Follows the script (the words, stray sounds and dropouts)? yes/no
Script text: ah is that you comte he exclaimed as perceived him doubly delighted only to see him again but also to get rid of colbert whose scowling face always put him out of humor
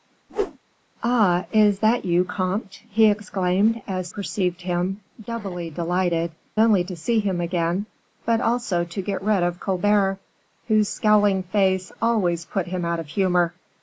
no